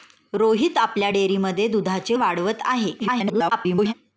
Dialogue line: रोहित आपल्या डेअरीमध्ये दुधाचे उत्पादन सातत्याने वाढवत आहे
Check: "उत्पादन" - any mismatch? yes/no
yes